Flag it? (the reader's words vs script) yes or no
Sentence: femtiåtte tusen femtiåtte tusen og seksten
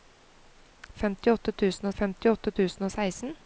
no